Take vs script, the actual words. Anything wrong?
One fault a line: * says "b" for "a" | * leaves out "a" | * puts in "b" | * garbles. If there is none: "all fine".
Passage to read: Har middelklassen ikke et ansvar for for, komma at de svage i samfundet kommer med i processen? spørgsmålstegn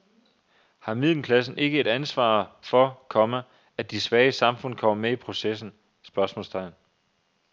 * leaves out "for"